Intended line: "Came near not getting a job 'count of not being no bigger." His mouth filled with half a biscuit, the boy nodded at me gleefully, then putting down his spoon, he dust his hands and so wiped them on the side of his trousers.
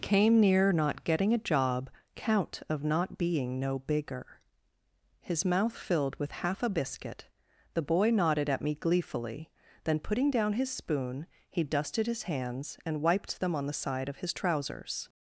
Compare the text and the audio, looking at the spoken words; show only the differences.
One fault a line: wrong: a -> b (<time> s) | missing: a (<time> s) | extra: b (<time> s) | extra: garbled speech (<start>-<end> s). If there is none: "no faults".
wrong: dust -> dusted (11.6 s)
missing: so (13.0 s)